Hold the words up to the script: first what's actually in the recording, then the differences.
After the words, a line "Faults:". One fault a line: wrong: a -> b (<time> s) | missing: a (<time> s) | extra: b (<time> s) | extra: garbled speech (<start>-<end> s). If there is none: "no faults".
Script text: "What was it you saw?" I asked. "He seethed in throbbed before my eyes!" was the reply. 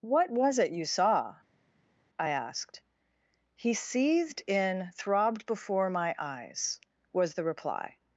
"What was it you saw?" I asked. "He seethed in throbbed before my eyes!" was the reply.
Faults:
no faults